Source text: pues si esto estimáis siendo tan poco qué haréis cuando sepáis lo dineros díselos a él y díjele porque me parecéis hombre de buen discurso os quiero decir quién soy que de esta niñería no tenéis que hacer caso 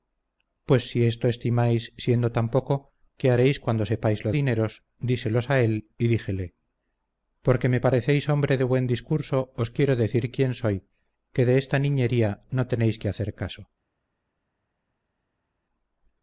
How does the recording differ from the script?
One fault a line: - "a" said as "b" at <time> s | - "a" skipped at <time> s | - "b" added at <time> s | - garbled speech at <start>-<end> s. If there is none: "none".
none